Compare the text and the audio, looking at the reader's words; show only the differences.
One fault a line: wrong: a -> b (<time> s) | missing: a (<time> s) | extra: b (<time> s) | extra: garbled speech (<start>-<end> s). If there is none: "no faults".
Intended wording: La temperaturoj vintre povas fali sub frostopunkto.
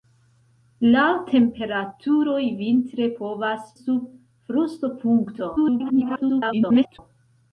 missing: fali (3.7 s)
extra: garbled speech (5.6-7.0 s)